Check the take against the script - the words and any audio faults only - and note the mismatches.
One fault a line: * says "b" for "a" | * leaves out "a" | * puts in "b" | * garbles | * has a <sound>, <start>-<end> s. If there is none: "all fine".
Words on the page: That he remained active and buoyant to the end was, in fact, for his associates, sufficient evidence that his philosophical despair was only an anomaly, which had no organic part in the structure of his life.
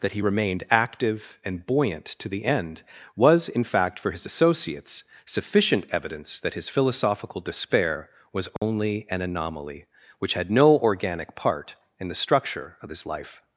* has a dropout, 8.6-8.6 s